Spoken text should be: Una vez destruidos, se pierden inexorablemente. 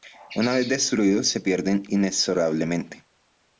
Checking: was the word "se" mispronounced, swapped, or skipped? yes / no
no